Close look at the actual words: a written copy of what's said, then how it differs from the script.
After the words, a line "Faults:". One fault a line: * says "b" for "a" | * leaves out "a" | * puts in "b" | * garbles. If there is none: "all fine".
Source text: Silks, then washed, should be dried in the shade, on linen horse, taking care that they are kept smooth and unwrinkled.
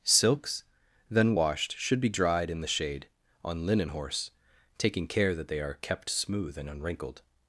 Silks, then washed, should be dried in the shade, on linen horse, taking care that they are kept smooth and unwrinkled.
Faults:
all fine